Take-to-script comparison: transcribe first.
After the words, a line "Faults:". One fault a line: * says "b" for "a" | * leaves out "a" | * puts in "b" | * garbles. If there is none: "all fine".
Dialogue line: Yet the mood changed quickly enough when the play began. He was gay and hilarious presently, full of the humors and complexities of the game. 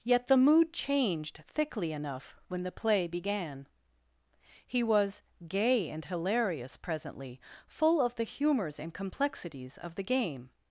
Yet the mood changed thickly enough when the play began. He was gay and hilarious presently, full of the humors and complexities of the game.
Faults:
* says "thickly" for "quickly"